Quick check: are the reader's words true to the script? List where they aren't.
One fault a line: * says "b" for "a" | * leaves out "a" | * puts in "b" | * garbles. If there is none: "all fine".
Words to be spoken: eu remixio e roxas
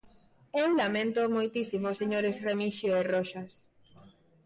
* puts in "laméntoo moitísimo señores"